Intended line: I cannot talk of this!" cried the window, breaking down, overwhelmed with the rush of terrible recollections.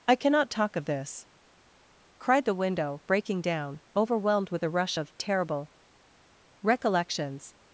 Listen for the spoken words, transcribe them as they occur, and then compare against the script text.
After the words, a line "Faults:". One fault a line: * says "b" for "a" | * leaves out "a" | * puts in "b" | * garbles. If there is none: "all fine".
I cannot talk of this!" cried the window, breaking down, overwhelmed with the rush of terrible recollections.
Faults:
all fine